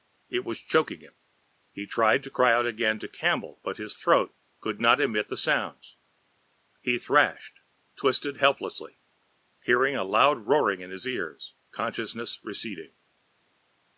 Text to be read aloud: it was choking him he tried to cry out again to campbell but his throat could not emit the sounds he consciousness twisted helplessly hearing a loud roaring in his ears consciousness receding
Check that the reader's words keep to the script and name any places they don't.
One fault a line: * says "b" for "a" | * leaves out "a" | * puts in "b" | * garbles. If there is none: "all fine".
* says "thrashed" for "consciousness"